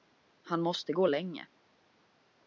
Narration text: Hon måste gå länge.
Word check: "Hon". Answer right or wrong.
wrong